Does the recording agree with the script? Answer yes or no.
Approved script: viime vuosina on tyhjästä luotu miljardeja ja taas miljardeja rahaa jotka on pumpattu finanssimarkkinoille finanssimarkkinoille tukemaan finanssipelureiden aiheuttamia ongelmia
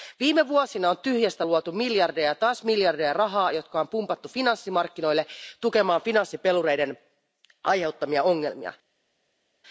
no